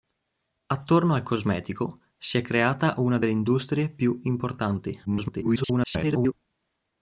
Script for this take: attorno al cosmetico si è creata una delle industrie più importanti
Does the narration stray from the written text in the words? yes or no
yes